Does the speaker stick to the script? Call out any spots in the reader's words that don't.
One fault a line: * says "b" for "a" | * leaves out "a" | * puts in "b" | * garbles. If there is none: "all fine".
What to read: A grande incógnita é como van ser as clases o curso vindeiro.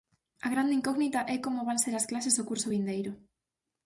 all fine